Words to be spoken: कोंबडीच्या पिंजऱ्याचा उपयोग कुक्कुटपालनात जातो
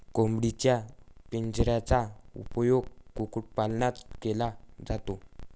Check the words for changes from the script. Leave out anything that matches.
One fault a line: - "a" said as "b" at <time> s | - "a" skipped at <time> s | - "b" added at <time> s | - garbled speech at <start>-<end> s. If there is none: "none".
- "केला" added at 4.2 s